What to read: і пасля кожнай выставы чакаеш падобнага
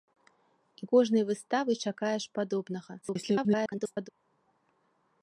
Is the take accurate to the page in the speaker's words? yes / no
no